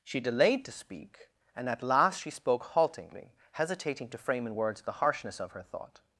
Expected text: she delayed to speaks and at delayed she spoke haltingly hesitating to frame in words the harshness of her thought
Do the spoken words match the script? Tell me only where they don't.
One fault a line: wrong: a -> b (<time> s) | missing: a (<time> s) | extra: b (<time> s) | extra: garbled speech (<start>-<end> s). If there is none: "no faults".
wrong: speaks -> speak (0.7 s)
wrong: delayed -> last (1.8 s)